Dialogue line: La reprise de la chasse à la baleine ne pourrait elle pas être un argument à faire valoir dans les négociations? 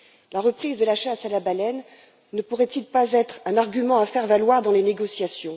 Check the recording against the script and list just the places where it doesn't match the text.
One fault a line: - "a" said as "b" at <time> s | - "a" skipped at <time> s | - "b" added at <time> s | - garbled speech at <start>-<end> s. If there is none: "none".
none